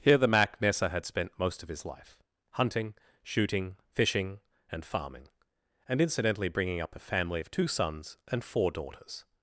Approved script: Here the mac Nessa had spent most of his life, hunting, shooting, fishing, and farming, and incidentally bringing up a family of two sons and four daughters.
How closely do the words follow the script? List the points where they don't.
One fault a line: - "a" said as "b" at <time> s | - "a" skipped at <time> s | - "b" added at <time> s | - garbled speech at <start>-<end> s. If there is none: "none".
none